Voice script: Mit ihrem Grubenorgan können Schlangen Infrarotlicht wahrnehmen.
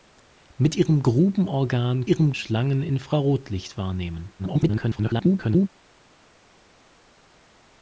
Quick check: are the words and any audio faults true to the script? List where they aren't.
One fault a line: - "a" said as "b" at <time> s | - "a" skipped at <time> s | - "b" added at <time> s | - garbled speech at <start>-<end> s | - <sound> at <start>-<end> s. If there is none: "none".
- "können" said as "ihrem" at 2.1 s
- garbled speech at 4.4-5.7 s